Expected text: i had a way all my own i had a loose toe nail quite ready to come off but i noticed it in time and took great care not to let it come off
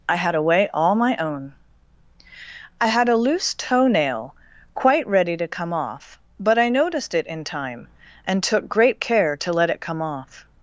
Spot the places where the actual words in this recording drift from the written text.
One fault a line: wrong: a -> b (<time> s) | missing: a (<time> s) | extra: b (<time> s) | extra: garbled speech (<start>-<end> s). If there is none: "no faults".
missing: not (9.4 s)